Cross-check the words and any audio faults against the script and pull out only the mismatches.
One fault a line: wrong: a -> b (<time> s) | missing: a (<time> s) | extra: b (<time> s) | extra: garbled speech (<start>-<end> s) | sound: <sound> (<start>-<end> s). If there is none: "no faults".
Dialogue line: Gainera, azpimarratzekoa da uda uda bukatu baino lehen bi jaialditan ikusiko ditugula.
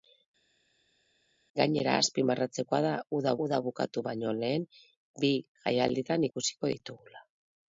no faults